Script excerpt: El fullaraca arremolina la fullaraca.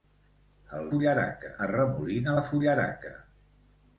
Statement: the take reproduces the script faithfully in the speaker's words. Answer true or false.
true